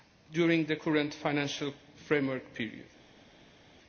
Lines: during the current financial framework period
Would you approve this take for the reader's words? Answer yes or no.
yes